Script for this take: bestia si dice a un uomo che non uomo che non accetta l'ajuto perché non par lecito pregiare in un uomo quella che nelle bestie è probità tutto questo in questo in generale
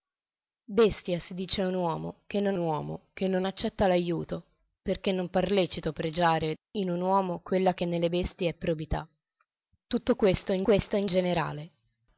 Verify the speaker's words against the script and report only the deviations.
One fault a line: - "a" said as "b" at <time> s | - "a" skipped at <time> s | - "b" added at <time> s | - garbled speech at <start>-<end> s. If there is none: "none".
none